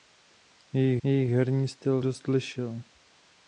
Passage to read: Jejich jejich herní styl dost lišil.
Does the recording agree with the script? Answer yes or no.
yes